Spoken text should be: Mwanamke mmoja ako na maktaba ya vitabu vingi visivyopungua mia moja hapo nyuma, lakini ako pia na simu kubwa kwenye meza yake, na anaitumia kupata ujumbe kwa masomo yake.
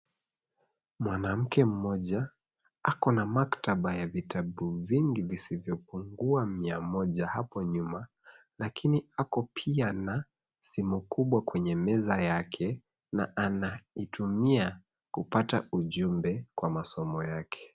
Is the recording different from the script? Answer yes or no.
no